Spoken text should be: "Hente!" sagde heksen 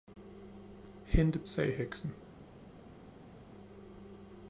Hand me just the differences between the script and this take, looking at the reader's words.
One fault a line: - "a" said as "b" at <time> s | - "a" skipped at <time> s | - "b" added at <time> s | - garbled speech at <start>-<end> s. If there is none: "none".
none